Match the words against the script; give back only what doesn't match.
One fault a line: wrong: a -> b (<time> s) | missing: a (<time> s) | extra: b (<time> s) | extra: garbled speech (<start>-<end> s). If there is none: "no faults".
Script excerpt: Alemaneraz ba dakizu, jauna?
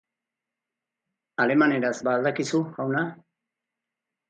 extra: al (2.2 s)